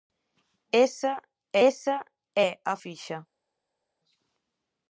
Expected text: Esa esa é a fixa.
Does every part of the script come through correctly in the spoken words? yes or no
yes